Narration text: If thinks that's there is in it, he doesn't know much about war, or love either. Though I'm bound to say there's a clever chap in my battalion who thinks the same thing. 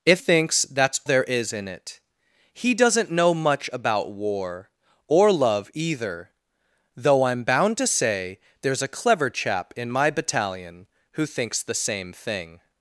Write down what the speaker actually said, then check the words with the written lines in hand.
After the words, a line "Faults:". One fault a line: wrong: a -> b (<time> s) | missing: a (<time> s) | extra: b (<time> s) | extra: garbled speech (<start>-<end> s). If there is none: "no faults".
If thinks that's there is in it, he doesn't know much about war, or love either. Though I'm bound to say there's a clever chap in my battalion who thinks the same thing.
Faults:
no faults